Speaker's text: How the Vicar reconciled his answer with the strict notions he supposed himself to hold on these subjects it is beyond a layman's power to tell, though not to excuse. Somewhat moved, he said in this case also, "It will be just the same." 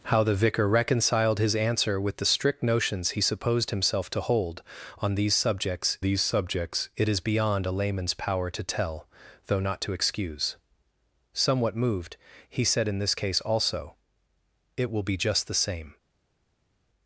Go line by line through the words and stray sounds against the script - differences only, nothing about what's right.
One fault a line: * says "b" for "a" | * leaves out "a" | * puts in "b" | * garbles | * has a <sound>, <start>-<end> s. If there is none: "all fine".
* puts in "these subjects"